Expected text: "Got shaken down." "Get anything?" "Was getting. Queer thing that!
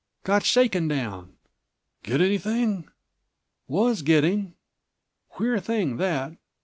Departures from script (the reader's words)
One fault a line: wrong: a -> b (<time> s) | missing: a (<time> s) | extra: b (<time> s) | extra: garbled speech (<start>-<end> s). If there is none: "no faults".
no faults